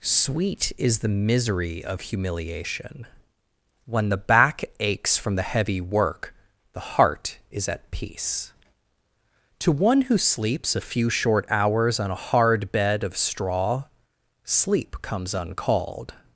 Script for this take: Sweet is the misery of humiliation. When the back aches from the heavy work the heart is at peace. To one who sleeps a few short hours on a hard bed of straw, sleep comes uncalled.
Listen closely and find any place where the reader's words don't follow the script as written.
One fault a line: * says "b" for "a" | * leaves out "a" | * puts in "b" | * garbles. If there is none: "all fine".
all fine